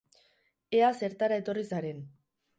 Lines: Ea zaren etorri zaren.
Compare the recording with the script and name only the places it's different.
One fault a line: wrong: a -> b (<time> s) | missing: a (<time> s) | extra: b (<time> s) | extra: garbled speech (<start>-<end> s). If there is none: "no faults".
wrong: zaren -> zertara (1.0 s)